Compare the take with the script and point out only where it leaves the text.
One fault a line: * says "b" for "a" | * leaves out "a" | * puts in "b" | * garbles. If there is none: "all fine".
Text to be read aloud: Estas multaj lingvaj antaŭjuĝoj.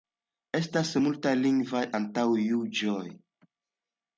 all fine